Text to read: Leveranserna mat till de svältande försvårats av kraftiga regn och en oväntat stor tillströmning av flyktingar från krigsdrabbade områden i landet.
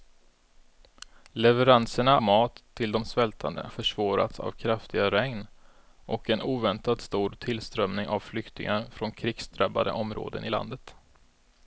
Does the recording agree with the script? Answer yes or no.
yes